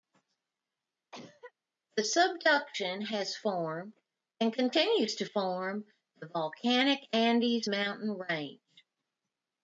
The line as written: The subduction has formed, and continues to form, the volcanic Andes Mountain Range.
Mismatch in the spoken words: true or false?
false